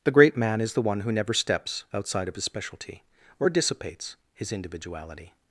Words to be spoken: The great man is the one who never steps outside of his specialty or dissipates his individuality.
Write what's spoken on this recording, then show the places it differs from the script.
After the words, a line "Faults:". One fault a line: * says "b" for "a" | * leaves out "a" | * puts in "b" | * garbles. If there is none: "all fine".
The great man is the one who never steps outside of his specialty or dissipates his individuality.
Faults:
all fine